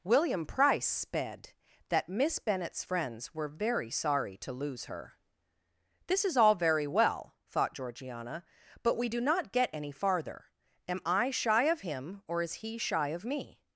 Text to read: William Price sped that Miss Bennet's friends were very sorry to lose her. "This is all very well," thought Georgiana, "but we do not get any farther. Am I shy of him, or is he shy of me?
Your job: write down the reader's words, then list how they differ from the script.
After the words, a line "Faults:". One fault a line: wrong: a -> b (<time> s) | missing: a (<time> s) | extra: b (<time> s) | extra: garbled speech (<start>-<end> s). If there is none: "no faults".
William Price sped that Miss Bennet's friends were very sorry to lose her. "This is all very well," thought Georgiana, "but we do not get any farther. Am I shy of him, or is he shy of me?
Faults:
no faults